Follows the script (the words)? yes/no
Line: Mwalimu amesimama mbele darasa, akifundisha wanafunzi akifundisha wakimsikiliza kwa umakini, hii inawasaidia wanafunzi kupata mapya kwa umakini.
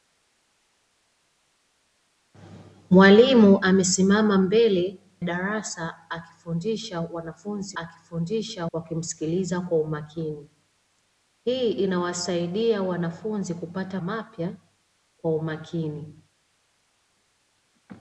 yes